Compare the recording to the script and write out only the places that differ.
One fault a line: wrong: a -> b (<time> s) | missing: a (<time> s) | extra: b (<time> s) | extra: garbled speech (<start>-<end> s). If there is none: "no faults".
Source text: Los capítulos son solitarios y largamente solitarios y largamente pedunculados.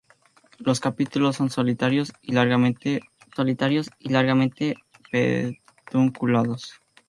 no faults